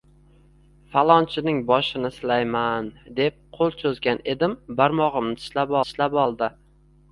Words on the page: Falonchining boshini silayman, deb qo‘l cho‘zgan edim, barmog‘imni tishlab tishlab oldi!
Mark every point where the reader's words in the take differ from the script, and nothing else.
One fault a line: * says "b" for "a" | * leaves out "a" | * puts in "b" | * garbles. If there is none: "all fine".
all fine